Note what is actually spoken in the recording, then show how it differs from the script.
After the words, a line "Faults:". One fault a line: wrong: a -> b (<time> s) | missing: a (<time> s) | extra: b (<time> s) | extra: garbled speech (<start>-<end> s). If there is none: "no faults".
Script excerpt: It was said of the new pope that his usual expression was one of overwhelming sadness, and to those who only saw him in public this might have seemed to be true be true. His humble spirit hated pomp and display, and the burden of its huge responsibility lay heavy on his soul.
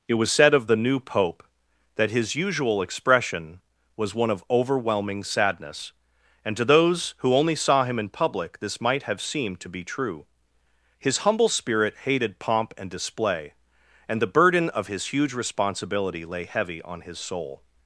It was said of the new pope that his usual expression was one of overwhelming sadness, and to those who only saw him in public this might have seemed to be true. His humble spirit hated pomp and display, and the burden of his huge responsibility lay heavy on his soul.
Faults:
missing: be true (10.2 s)
wrong: its -> his (14.9 s)